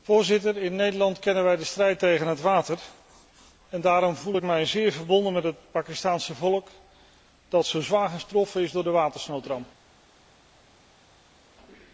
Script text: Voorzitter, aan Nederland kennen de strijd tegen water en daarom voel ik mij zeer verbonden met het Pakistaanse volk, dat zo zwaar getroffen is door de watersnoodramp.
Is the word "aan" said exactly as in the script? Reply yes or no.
no